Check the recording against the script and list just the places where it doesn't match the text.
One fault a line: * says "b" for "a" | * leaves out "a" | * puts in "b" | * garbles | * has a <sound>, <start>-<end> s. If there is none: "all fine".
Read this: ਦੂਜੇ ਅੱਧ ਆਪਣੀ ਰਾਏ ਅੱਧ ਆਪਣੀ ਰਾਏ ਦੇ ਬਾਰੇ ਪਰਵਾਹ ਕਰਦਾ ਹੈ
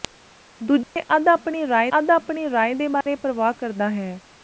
* has a dropout, 0.8-1.0 s
* has a dropout, 3.0-3.1 s